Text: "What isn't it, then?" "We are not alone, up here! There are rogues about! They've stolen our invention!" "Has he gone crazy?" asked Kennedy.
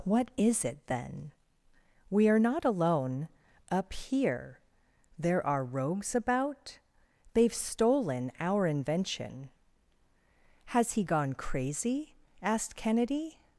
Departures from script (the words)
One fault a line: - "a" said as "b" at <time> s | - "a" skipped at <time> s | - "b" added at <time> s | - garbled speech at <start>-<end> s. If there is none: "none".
- "isn't" said as "is" at 0.4 s